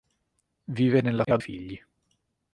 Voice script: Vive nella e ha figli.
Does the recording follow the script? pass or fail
pass